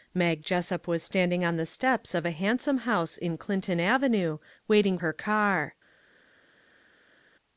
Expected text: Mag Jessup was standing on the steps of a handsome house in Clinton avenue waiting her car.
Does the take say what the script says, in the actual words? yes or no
yes